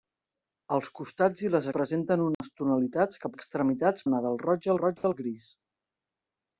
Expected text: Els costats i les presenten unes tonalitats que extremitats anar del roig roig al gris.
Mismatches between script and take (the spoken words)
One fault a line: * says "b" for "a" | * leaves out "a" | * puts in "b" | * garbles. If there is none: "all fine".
all fine